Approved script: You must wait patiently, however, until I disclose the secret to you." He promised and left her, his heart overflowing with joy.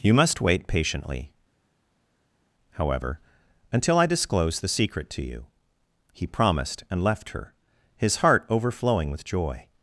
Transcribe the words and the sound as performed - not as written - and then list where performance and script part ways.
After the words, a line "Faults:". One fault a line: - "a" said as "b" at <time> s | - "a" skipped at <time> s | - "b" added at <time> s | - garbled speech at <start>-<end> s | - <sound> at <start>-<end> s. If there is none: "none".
You must wait patiently, however, until I disclose the secret to you." He promised and left her, his heart overflowing with joy.
Faults:
none